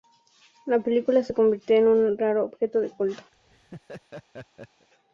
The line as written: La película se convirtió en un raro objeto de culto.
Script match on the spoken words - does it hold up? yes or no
yes